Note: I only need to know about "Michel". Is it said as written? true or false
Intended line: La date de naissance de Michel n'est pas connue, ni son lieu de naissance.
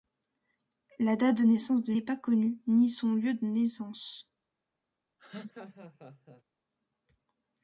false